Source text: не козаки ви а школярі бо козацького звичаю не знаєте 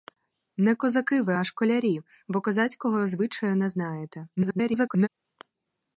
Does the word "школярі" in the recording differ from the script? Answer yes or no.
no